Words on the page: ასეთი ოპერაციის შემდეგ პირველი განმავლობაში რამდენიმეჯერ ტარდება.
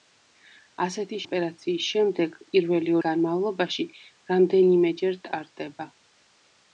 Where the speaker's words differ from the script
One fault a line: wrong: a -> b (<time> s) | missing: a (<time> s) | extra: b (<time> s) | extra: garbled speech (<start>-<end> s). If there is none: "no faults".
no faults